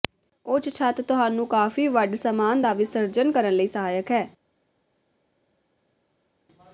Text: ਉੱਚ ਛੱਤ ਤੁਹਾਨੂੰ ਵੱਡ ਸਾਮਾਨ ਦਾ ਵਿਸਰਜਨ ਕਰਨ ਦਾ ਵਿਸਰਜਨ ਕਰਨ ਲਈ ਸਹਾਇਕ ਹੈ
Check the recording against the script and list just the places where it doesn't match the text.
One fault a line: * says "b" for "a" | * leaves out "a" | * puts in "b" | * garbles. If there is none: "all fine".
* puts in "ਕਾਫ਼ੀ"
* leaves out "ਦਾ ਵਿਸਰਜਨ ਕਰਨ"